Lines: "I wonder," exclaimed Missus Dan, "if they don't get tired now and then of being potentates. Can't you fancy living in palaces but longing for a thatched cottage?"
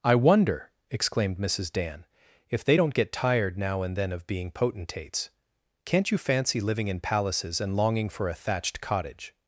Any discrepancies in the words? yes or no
yes